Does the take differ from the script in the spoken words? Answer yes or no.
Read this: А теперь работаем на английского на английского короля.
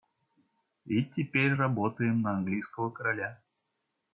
yes